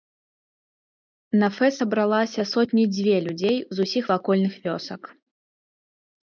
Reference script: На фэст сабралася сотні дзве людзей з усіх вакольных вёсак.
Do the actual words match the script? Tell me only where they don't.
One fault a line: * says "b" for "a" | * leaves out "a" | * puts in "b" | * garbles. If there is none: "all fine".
all fine